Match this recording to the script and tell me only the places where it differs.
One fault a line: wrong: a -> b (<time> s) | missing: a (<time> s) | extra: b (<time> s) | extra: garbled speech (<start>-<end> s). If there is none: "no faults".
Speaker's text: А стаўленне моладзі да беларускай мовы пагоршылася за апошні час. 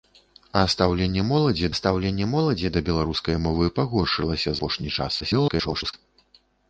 extra: стаўленне моладзі (1.8 s)
missing: за (4.5 s)
extra: garbled speech (5.2-5.9 s)